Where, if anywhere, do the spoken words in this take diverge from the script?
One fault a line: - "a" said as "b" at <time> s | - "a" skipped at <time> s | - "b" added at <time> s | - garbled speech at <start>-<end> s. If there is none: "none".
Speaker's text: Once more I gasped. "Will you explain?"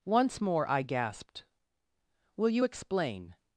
none